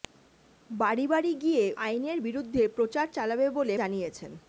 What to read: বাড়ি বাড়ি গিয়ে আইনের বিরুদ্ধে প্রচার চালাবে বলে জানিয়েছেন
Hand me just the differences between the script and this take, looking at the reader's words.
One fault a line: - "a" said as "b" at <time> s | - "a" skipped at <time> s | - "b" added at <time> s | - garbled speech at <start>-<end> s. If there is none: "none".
none